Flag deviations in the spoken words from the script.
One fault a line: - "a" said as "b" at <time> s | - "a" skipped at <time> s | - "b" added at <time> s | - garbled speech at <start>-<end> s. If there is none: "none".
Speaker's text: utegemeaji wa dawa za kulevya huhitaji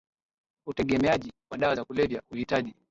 none